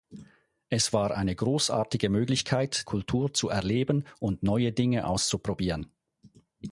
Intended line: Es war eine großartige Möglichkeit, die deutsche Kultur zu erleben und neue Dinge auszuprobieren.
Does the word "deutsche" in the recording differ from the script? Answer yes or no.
yes